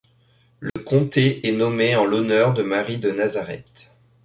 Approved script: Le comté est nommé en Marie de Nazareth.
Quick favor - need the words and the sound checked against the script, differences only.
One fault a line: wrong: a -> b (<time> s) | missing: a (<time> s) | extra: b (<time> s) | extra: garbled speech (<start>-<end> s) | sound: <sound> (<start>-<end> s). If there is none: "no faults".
sound: dropout (0.7-0.8 s)
extra: l'honneur de (2.0 s)